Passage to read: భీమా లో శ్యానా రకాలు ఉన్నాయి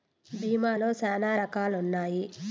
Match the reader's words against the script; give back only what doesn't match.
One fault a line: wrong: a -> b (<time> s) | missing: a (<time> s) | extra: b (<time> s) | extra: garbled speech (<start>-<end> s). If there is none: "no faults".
no faults